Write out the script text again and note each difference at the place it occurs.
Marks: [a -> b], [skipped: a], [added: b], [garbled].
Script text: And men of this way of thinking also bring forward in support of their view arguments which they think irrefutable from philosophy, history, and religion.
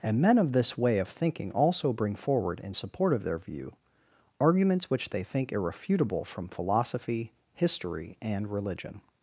And men of this way of thinking also bring forward in support of their view arguments which they think irrefutable from philosophy, history, and religion.